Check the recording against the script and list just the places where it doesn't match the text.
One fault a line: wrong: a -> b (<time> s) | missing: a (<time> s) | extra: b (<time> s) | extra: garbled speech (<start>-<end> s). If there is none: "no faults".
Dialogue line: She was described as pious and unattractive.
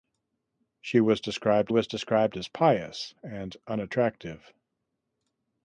extra: was described (1.7 s)